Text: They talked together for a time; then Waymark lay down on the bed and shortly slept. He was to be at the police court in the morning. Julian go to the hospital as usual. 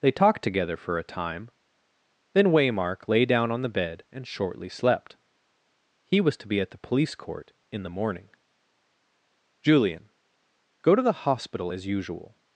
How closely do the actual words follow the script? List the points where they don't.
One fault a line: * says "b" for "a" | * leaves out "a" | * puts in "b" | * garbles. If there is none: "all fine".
all fine